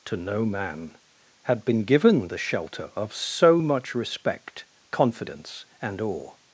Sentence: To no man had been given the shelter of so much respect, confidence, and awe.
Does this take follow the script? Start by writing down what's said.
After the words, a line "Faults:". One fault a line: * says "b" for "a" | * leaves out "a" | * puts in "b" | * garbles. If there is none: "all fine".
To no man had been given the shelter of so much respect, confidence, and awe.
Faults:
all fine